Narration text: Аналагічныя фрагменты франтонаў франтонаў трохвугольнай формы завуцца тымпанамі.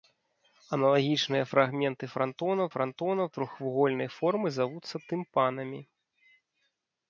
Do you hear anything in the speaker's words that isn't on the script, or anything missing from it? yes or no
no